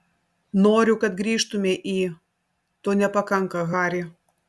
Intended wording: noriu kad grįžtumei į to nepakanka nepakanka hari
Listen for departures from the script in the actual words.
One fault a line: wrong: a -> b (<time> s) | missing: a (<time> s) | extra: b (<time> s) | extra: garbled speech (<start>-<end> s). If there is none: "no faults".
missing: nepakanka (3.7 s)